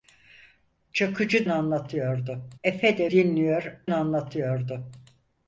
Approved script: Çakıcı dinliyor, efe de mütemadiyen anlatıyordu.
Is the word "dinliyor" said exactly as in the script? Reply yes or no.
no